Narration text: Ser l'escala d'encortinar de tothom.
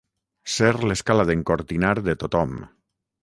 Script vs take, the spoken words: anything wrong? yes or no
no